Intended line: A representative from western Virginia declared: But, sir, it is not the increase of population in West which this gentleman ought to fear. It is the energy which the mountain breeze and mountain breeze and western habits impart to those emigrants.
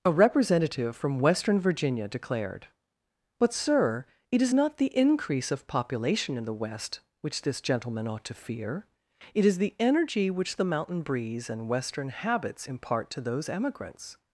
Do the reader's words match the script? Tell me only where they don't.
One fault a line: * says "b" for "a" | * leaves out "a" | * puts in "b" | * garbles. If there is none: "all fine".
* puts in "the"
* leaves out "mountain breeze and"